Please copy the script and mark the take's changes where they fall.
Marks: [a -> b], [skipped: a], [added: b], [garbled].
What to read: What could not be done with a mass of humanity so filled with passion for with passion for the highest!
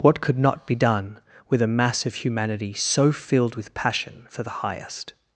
What could not be done with a mass of humanity so filled with passion for [skipped: with passion for] the highest!